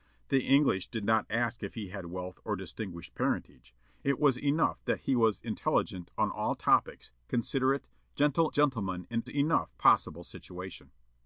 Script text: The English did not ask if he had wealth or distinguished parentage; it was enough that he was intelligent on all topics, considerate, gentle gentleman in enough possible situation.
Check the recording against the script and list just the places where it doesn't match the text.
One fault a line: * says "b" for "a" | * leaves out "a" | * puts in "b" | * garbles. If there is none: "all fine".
all fine